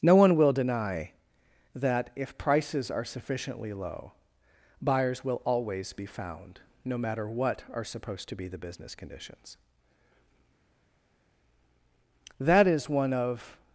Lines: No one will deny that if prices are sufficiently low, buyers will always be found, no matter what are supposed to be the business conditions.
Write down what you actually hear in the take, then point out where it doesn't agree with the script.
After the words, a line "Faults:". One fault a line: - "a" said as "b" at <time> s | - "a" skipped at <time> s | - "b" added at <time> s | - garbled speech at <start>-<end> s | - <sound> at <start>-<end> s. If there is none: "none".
No one will deny that if prices are sufficiently low, buyers will always be found, no matter what are supposed to be the business conditions. That is one of
Faults:
- "That is one of" added at 12.4 s